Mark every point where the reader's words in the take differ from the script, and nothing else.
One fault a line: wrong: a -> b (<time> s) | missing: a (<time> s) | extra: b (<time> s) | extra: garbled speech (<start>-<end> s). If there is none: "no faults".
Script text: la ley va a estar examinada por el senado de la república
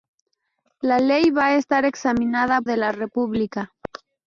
missing: por el senado (2.6 s)